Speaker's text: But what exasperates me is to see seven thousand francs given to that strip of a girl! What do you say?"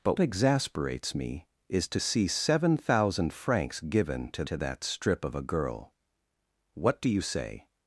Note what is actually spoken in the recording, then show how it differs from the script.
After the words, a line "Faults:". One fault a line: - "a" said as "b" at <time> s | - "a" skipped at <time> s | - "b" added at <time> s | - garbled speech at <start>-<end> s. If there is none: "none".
But exasperates me is to see seven thousand francs given to to that strip of a girl! What do you say?"
Faults:
- "what" skipped at 0.2 s
- "to" added at 4.4 s